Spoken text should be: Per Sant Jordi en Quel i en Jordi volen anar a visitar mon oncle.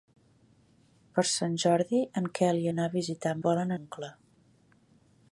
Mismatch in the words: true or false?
true